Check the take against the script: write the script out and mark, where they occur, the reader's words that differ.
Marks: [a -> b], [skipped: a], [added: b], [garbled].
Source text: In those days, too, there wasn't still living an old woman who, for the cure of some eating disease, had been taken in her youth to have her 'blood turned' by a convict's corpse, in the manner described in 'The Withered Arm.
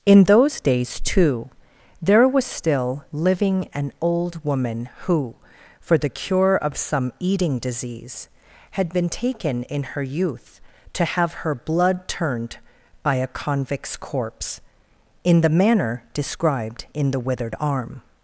In those days, too, there [wasn't -> was] still living an old woman who, for the cure of some eating disease, had been taken in her youth to have her 'blood turned' by a convict's corpse, in the manner described in 'The Withered Arm.